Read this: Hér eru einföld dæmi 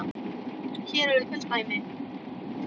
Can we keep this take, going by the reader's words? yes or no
yes